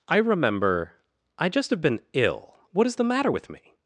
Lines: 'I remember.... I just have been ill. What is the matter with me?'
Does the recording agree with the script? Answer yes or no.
yes